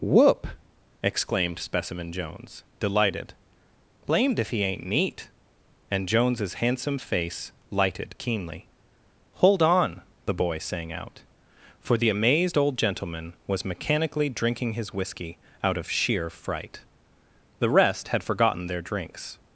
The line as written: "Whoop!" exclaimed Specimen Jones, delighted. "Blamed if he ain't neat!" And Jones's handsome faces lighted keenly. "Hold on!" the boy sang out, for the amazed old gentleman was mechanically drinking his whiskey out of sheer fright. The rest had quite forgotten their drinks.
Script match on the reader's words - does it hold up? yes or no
no